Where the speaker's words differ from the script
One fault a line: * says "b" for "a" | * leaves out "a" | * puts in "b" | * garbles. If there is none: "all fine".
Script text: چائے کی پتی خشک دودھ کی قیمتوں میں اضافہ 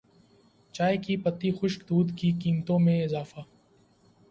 all fine